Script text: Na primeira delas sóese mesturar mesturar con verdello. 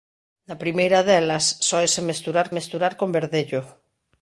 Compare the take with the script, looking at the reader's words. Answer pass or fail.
pass